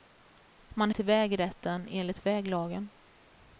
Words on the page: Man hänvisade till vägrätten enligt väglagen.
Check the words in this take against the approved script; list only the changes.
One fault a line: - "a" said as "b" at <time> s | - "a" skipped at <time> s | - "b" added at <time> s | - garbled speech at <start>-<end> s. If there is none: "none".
- "hänvisade" skipped at 0.9 s